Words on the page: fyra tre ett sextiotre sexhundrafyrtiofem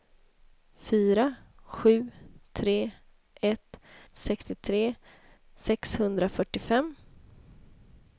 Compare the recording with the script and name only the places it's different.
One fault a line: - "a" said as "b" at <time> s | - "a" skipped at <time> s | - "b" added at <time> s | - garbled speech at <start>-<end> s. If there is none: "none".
- "sju" added at 1.6 s